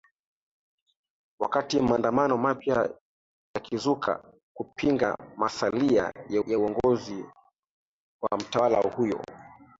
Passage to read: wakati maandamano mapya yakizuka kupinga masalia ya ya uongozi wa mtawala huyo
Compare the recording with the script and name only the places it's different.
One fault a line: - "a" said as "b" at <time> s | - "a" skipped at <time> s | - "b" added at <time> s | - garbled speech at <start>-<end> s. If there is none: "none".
none